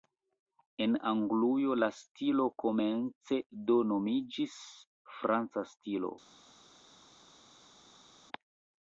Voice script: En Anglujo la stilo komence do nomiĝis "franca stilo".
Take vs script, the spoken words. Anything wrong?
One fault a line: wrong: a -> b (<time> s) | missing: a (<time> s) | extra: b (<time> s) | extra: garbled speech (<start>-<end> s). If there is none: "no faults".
no faults